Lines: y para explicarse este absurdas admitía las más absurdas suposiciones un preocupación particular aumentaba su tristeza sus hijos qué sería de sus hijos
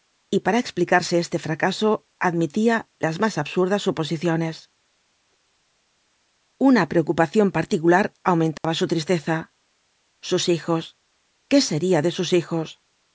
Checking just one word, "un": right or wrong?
wrong